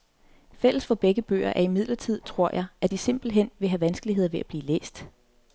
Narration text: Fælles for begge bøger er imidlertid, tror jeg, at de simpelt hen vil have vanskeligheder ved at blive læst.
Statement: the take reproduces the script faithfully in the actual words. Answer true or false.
true